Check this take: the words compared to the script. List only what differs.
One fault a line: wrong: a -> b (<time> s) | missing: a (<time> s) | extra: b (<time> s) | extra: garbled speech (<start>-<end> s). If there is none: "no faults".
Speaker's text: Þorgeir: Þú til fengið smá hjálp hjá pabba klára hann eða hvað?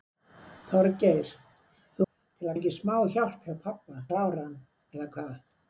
no faults